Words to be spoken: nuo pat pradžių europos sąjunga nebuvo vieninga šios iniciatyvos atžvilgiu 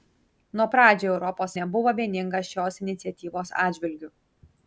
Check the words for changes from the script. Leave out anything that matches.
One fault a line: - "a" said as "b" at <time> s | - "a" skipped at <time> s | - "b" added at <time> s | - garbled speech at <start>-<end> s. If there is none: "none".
- "pat" skipped at 0.7 s
- "sąjunga" skipped at 1.5 s